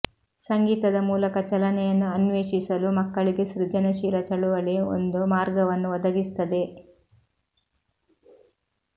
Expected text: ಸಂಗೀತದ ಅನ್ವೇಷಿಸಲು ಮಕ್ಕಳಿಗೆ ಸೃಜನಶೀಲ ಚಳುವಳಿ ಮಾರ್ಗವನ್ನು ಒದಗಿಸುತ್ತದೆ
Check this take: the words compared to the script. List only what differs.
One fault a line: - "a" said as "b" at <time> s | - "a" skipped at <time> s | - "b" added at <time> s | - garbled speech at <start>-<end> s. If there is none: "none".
- "ಮೂಲಕ ಚಲನೆಯನ್ನು" added at 1.1 s
- "ಒಂದು" added at 5.0 s